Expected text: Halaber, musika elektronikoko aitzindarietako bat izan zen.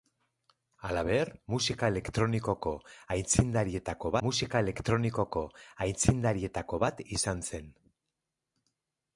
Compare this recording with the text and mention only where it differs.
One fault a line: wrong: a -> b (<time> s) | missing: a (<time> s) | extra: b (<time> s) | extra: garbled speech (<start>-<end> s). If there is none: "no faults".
extra: musika elektronikoko aitzindarietako (4.3 s)